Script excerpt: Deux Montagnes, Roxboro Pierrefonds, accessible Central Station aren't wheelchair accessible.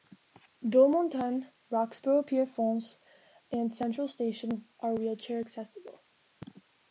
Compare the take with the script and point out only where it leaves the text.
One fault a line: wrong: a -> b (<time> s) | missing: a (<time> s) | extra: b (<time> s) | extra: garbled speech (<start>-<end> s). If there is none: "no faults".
wrong: accessible -> and (3.5 s)
wrong: aren't -> are (4.8 s)